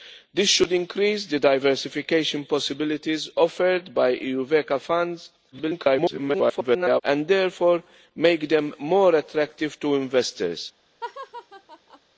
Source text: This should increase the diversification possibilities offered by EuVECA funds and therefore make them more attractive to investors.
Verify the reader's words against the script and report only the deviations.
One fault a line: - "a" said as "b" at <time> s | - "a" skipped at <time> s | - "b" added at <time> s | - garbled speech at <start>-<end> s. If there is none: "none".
- garbled speech at 5.5-7.0 s